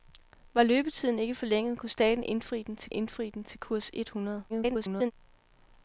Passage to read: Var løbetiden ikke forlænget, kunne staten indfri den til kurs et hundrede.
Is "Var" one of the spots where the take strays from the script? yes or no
no